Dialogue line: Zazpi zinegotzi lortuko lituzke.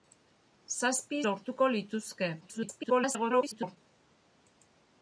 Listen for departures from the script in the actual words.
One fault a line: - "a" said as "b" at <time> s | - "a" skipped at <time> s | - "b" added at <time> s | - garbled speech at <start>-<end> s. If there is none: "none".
- "zinegotzi" skipped at 1.2 s
- garbled speech at 2.4-3.8 s